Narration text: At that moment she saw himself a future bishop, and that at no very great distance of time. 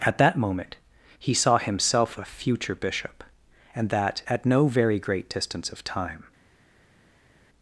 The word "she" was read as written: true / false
false